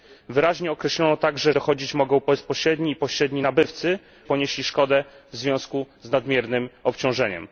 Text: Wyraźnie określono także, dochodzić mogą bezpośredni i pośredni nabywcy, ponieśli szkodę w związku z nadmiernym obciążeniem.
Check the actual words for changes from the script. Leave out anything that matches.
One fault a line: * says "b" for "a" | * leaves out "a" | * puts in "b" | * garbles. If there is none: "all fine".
all fine